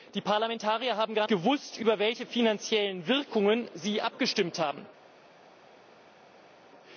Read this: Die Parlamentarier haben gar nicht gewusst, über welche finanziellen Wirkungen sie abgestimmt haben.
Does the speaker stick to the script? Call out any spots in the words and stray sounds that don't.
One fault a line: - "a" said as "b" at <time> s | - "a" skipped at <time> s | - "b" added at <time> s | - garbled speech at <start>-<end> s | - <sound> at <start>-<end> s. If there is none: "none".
- "nicht" skipped at 1.3 s